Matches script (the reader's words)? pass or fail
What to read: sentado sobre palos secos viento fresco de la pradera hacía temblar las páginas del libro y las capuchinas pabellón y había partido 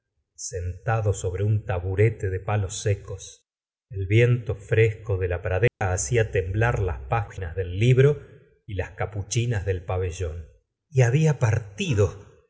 fail